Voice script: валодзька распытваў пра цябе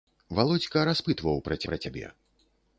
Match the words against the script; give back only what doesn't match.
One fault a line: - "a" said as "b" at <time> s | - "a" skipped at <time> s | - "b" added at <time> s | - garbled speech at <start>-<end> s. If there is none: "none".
- "пра" added at 1.7 s